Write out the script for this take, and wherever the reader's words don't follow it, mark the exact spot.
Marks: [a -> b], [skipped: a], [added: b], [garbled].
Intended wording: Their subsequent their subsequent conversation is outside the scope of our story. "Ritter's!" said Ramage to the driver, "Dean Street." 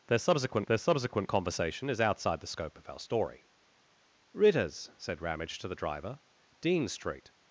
Their subsequent their subsequent conversation is outside the scope of our story. "Ritter's!" said Ramage to the driver, "Dean Street."